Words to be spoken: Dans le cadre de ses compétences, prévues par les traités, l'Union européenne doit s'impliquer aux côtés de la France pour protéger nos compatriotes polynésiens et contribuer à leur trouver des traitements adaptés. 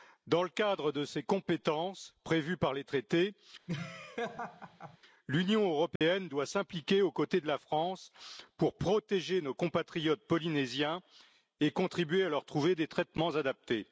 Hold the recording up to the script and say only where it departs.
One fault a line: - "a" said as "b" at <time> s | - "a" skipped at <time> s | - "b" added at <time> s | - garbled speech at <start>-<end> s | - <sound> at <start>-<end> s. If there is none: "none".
- laugh at 3.7-5.0 s
- dropout at 6.0-6.0 s